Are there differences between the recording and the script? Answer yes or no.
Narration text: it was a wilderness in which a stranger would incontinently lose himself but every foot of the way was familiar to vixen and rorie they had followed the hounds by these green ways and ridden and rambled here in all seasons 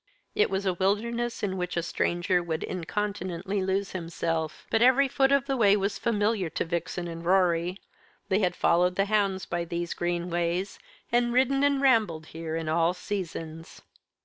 no